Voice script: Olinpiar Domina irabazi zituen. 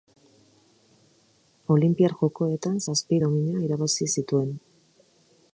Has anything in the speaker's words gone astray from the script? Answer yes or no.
yes